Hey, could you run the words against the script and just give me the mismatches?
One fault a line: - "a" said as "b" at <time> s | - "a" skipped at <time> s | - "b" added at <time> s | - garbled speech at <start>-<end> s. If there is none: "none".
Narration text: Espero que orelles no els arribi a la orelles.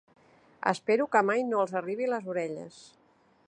- "orelles" said as "mai" at 1.3 s
- "la" said as "les" at 2.1 s